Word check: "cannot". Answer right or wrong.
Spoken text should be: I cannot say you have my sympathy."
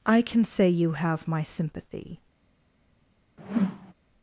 wrong